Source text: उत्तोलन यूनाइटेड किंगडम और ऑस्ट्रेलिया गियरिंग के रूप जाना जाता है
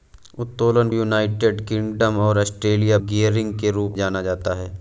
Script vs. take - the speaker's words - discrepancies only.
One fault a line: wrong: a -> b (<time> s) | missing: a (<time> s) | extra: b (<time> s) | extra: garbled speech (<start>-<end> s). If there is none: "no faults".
no faults